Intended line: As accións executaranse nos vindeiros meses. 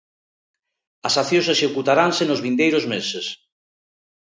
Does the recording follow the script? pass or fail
pass